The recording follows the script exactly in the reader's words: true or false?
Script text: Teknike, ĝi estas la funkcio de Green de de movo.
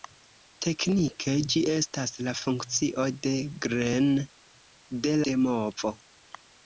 true